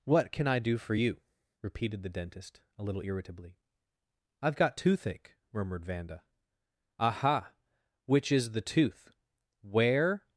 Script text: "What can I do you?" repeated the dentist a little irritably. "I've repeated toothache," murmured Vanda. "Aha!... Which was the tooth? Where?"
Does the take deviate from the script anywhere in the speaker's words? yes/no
yes